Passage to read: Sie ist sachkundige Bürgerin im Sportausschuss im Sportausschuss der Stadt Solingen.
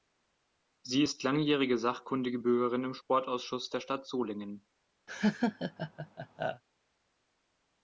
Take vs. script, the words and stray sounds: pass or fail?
fail